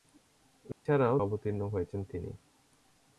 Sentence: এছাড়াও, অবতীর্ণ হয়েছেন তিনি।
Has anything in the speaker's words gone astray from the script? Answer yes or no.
no